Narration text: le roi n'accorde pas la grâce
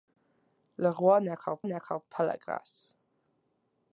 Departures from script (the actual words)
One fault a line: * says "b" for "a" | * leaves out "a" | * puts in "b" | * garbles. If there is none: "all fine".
* puts in "n'accorde"